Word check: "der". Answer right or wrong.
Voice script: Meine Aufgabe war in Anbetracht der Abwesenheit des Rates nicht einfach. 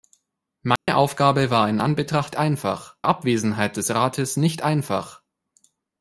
wrong